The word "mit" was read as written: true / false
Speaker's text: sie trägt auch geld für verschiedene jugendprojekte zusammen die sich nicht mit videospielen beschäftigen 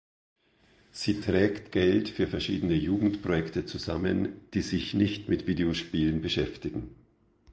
true